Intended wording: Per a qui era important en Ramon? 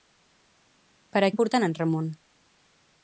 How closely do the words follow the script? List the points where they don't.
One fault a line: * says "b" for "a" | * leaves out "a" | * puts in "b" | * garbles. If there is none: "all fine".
* leaves out "qui era"